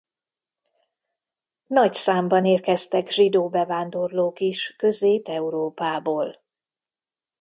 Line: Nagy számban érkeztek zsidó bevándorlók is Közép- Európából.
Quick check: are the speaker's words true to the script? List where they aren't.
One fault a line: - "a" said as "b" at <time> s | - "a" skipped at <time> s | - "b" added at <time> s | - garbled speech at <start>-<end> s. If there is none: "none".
none